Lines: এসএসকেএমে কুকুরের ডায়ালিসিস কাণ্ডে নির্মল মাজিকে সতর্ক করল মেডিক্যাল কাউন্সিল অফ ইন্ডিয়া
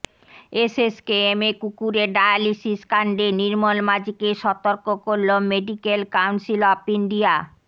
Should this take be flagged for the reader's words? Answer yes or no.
no